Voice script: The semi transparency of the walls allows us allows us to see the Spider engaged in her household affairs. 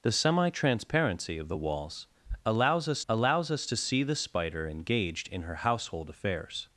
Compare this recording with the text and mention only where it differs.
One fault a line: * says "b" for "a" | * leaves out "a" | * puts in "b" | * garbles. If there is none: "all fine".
all fine